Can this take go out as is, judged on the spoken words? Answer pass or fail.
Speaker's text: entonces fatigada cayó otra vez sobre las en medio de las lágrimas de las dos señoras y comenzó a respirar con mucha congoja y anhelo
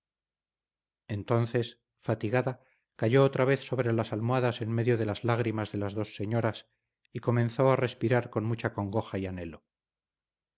fail